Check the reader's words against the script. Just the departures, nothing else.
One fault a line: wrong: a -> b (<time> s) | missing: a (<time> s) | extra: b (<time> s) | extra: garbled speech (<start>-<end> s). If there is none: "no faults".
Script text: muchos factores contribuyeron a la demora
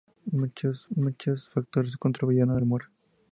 extra: muchos (1.0 s)
missing: la (2.6 s)